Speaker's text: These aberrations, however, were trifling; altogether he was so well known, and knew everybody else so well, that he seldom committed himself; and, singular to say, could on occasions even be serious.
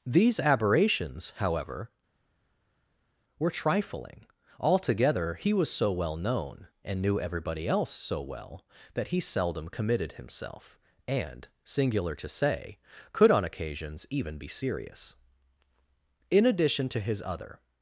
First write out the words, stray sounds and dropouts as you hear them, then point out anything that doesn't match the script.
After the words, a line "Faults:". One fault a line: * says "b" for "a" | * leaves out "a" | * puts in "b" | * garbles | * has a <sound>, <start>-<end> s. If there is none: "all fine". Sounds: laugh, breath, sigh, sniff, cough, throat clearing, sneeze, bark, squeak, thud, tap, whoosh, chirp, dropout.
These aberrations, however, were trifling; altogether he was so well known, and knew everybody else so well, that he seldom committed himself; and, singular to say, could on occasions even be serious. In addition to his other
Faults:
* puts in "In addition to his other"